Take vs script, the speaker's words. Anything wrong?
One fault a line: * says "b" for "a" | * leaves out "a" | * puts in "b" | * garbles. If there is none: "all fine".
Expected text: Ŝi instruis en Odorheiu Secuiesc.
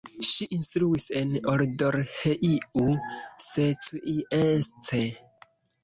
all fine